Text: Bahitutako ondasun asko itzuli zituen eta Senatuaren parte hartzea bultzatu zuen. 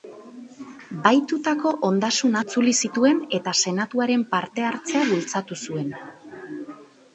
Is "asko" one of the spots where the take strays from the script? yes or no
yes